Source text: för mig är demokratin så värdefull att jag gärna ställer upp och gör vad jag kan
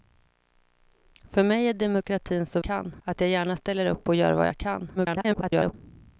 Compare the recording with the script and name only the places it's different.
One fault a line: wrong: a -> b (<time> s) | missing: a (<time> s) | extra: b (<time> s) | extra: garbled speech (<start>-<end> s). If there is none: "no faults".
wrong: värdefull -> kan (2.6 s)
extra: garbled speech (5.0-5.7 s)